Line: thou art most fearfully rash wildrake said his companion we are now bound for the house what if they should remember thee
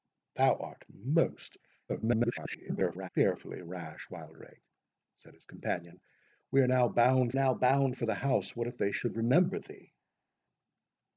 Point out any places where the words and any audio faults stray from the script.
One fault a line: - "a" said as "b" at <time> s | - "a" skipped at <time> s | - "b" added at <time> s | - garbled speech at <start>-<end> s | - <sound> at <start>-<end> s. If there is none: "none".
- garbled speech at 1.9-3.1 s
- "now bound" added at 7.3 s